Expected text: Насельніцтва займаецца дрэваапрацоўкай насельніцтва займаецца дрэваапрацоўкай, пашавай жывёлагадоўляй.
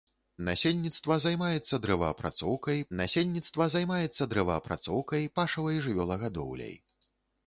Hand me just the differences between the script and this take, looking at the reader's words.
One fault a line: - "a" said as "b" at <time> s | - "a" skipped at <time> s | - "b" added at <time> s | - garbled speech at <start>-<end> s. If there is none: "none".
none